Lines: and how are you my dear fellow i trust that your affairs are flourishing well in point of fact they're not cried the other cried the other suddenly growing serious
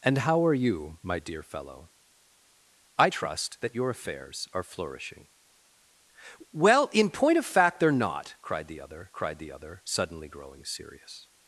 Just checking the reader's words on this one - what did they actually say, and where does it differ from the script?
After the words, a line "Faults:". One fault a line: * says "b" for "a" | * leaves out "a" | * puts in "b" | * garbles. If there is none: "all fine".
and how are you my dear fellow i trust that your affairs are flourishing well in point of fact they're not cried the other cried the other suddenly growing serious
Faults:
all fine